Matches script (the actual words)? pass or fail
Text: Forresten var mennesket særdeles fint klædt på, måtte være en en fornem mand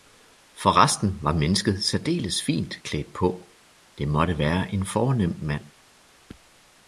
fail